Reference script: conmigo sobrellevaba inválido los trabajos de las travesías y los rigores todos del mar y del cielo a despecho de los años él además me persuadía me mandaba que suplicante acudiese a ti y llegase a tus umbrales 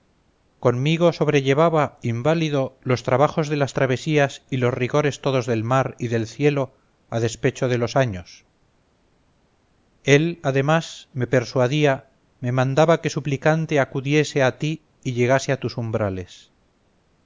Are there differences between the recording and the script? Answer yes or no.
no